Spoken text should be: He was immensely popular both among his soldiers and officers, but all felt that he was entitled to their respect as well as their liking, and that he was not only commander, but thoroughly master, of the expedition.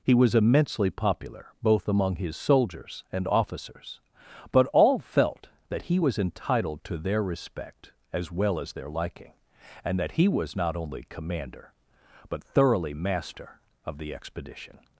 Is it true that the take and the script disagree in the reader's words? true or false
false